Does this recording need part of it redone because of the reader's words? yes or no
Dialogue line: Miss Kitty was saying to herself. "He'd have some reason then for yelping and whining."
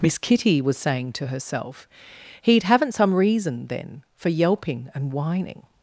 yes